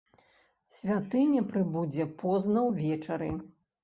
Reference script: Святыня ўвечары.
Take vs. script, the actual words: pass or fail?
fail